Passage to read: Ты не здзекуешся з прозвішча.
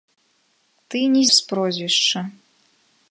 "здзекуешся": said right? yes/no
no